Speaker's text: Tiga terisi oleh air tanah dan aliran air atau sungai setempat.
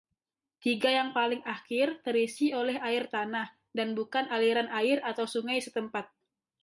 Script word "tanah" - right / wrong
right